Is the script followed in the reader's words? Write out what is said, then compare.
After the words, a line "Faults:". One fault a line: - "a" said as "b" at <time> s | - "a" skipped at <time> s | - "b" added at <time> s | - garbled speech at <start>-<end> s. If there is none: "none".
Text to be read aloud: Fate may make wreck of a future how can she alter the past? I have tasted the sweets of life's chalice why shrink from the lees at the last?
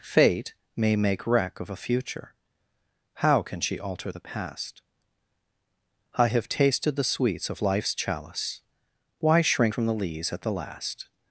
Fate may make wreck of a future how can she alter the past? I have tasted the sweets of life's chalice why shrink from the lees at the last?
Faults:
none